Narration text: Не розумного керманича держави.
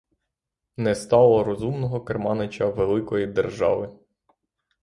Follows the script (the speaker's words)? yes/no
no